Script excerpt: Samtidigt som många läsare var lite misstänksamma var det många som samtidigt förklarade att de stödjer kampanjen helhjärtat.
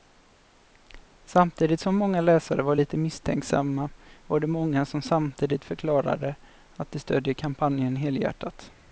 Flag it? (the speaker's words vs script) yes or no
no